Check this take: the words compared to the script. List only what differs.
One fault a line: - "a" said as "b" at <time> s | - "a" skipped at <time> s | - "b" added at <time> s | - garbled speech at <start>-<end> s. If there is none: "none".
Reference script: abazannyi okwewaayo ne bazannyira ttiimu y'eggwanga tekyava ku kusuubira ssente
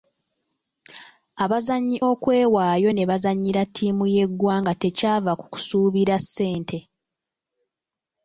none